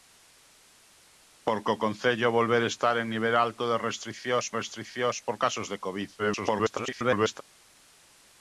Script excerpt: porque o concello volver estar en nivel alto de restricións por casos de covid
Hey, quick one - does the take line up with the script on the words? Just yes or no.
no